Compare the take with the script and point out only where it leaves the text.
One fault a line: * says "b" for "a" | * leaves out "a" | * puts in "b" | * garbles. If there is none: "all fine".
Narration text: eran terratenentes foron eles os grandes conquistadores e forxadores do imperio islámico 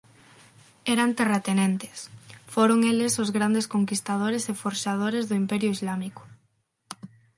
all fine